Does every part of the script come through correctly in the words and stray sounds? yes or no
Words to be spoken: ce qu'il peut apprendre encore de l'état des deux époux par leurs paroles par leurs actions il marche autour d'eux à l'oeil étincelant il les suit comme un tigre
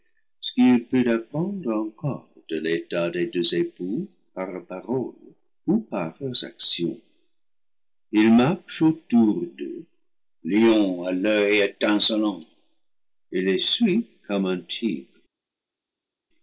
no